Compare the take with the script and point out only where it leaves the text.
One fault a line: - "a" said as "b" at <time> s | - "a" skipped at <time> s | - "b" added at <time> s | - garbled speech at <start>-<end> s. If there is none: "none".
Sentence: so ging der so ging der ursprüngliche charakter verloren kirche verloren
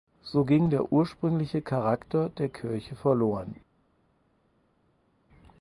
- "so ging der" skipped at 0.9 s
- "verloren" said as "der" at 2.3 s